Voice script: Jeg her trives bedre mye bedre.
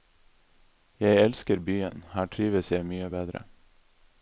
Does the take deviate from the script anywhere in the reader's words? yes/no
yes